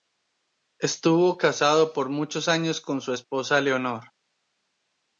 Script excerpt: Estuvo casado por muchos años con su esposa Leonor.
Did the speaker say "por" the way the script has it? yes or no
yes